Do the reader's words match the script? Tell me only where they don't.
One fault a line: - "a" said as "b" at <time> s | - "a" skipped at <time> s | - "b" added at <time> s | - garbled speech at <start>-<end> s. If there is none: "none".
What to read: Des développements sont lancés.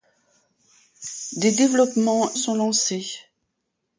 none